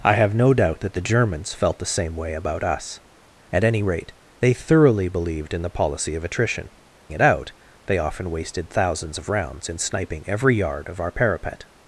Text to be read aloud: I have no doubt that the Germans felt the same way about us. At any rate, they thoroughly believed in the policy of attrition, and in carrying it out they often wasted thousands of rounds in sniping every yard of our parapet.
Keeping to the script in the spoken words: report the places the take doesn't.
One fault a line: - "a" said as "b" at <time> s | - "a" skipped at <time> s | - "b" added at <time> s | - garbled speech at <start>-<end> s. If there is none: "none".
- "and in carrying" skipped at 6.7 s